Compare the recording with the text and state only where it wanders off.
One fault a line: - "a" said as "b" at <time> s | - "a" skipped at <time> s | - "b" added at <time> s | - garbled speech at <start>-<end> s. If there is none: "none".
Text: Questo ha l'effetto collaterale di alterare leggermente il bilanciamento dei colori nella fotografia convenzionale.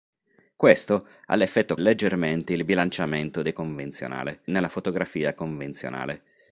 - "collaterale di alterare" skipped at 1.8 s
- "colori" said as "convenzionale" at 3.5 s